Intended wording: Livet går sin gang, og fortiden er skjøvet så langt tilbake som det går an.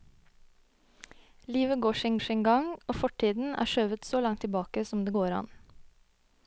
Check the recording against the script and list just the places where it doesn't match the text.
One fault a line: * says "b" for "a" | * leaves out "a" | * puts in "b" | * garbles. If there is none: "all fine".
* puts in "sin"